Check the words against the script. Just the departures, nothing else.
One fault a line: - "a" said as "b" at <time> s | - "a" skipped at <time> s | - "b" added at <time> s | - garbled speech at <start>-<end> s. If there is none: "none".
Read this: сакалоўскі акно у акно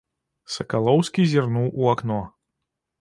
- "акно" said as "зірнуў" at 1.3 s